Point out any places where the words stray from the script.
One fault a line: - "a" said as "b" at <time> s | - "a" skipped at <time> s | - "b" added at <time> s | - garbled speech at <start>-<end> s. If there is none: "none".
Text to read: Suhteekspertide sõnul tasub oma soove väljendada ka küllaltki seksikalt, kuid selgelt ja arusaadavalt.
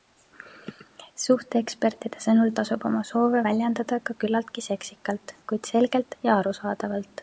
none